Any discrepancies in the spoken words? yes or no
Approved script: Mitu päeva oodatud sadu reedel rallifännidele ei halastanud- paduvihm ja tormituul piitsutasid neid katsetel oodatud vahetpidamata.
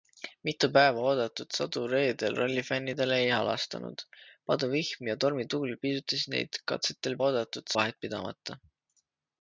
no